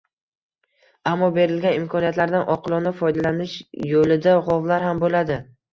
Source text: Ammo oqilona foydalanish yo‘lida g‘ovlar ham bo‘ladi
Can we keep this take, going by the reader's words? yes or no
no